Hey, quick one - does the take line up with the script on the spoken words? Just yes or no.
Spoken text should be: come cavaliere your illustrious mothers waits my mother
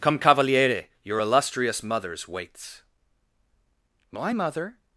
yes